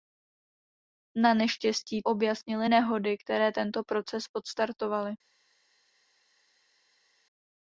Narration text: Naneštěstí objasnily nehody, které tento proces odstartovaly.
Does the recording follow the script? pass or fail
pass